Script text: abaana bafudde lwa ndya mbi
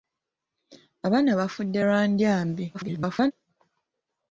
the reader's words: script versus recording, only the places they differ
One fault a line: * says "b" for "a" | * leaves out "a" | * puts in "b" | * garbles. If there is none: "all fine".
* garbles